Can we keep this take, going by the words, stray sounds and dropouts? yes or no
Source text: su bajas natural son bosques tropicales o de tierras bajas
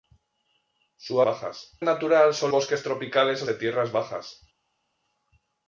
yes